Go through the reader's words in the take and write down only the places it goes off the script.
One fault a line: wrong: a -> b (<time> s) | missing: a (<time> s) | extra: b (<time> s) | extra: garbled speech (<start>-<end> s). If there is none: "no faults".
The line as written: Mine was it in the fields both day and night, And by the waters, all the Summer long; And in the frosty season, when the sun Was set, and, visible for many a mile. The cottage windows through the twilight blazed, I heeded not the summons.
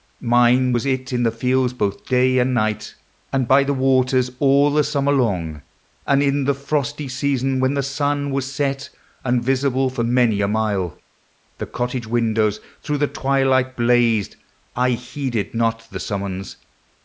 no faults